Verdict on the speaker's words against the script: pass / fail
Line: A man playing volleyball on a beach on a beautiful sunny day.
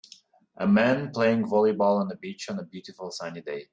pass